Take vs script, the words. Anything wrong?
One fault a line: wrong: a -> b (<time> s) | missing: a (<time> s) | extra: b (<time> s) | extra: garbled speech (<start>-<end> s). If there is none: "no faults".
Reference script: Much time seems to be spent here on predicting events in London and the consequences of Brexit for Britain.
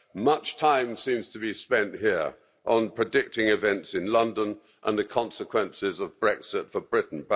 no faults